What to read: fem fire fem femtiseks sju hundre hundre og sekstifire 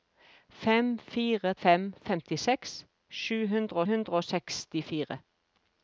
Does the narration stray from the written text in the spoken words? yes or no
no